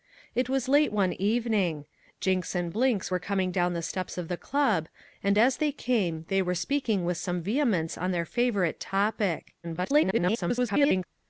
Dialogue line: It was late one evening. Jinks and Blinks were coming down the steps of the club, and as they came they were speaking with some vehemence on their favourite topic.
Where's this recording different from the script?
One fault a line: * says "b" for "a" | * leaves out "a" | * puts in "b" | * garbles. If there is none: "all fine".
* garbles